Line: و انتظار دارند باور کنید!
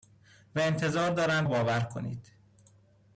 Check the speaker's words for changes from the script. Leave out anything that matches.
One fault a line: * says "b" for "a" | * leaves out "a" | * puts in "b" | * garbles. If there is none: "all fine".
all fine